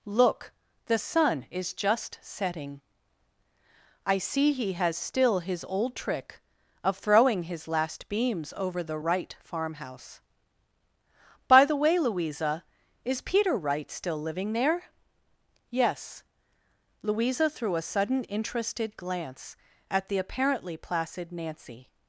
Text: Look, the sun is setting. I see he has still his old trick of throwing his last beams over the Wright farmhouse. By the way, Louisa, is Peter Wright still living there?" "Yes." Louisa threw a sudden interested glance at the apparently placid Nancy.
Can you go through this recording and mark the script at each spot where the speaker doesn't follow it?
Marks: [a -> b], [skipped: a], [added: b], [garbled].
Look, the sun is [added: just] setting. I see he has still his old trick of throwing his last beams over the Wright farmhouse. By the way, Louisa, is Peter Wright still living there?" "Yes." Louisa threw a sudden interested glance at the apparently placid Nancy.